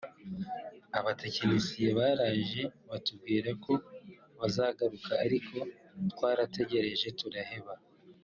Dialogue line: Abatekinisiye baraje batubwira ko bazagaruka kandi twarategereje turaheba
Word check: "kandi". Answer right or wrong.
wrong